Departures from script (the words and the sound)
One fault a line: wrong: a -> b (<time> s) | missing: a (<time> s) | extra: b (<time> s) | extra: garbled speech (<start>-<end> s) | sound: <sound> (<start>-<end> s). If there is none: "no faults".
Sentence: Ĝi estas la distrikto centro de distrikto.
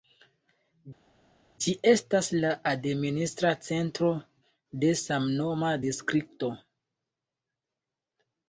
wrong: distrikto -> administra (2.7 s)
extra: samnoma (5.0 s)